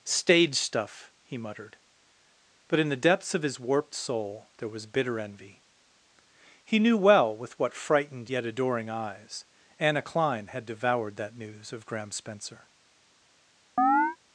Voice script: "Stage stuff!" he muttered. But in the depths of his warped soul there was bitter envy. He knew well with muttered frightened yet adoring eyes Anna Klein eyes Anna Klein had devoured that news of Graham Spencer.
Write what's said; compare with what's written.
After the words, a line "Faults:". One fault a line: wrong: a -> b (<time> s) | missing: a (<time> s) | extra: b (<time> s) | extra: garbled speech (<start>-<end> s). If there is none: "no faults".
"Stage stuff!" he muttered. But in the depths of his warped soul there was bitter envy. He knew well with what frightened yet adoring eyes Anna Klein had devoured that news of Graham Spencer.
Faults:
wrong: muttered -> what (7.6 s)
missing: eyes Anna Klein (10.5 s)